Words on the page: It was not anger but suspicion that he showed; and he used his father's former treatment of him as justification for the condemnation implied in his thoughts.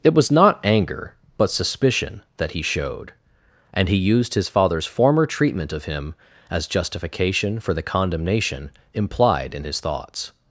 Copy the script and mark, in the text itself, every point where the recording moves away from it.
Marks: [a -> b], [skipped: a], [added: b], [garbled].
It was not anger but suspicion that he showed; and he used his father's former treatment of him as justification for the condemnation implied in his thoughts.